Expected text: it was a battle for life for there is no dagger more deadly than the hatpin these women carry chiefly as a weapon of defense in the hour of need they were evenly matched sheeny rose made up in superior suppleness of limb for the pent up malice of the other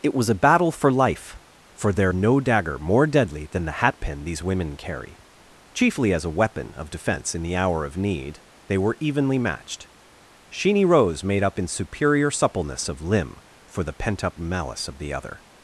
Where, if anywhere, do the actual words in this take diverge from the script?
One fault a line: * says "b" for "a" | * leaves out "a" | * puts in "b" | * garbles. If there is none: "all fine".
* leaves out "is"